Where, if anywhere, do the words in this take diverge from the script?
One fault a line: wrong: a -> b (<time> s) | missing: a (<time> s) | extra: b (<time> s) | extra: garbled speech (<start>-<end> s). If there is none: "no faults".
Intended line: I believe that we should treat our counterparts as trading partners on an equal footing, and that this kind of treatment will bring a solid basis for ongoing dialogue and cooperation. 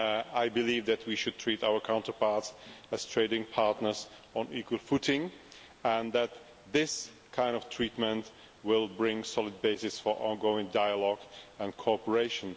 no faults